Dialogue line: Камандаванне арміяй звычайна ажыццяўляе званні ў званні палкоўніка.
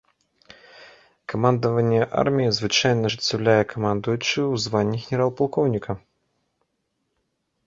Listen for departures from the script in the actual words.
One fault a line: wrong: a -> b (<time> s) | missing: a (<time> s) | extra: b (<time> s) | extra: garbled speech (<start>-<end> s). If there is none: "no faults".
wrong: званні -> камандуючы (3.7 s)
extra: генерал (5.1 s)